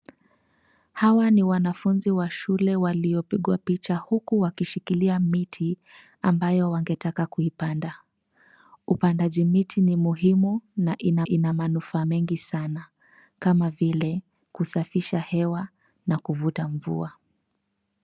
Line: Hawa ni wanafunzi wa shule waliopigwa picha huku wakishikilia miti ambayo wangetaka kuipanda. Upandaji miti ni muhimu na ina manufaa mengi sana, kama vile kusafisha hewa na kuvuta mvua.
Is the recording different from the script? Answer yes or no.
yes